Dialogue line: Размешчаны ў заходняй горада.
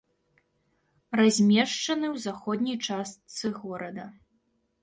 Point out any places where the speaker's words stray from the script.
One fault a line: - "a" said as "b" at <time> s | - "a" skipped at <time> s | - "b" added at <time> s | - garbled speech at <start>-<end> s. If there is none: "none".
- "частцы" added at 2.9 s